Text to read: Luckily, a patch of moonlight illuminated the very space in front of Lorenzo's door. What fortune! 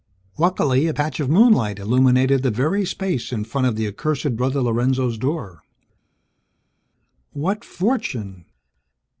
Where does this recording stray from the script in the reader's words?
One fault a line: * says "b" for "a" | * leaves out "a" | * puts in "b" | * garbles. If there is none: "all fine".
* puts in "the accursed Brother"